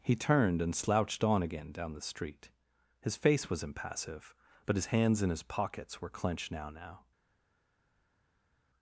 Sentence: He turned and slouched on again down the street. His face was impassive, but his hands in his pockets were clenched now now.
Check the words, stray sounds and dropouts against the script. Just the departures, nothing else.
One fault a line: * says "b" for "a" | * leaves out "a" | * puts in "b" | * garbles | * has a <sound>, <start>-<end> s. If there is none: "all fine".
all fine